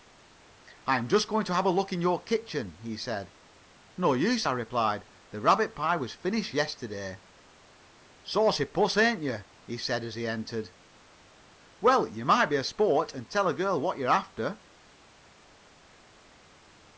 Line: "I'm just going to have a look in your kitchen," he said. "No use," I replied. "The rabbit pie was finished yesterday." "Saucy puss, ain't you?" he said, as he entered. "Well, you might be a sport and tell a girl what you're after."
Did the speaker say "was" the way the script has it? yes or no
yes